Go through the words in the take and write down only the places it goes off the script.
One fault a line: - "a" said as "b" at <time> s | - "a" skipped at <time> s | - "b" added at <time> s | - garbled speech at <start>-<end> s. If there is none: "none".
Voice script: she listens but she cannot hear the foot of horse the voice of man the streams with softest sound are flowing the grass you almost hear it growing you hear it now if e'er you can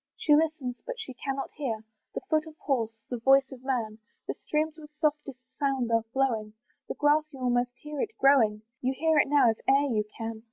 none